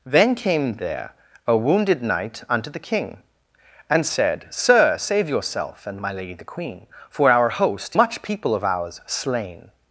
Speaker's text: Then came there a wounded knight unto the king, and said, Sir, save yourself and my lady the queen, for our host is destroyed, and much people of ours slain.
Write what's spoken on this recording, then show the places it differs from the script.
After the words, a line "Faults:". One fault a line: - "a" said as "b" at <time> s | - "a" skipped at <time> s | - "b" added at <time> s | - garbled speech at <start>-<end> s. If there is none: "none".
Then came there a wounded knight unto the king, and said, Sir, save yourself and my lady the queen, for our host much people of ours slain.
Faults:
- "is destroyed and" skipped at 8.0 s